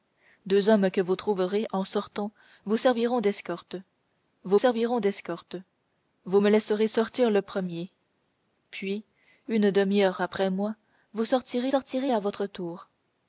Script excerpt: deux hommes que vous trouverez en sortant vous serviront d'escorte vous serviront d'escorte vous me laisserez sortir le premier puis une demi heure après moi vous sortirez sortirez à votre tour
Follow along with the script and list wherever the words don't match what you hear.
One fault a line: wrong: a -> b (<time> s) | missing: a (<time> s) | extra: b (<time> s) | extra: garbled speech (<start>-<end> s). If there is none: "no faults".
no faults